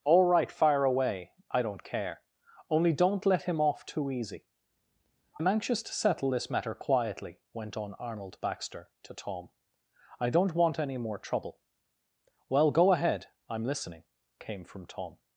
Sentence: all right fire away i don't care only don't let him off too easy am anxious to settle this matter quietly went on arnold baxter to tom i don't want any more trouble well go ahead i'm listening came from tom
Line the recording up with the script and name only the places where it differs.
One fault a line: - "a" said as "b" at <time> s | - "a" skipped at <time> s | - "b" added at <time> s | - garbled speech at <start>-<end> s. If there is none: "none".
none